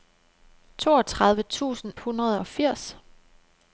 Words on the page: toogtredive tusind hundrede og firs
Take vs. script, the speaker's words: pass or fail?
pass